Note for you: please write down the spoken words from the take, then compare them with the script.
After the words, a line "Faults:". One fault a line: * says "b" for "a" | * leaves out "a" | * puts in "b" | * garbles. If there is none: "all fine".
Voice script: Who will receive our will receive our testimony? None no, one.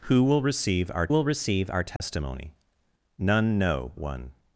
Who will receive our will receive our testimony? None no, one.
Faults:
all fine